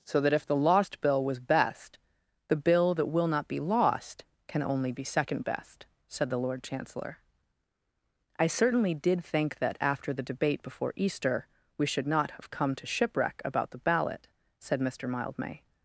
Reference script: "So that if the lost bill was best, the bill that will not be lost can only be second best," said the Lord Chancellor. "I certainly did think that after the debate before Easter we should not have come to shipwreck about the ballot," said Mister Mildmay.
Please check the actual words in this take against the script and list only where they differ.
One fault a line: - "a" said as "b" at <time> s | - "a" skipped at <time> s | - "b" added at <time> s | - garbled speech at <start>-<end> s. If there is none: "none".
none